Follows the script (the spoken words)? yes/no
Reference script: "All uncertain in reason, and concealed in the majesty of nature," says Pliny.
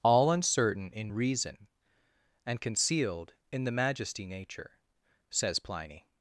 no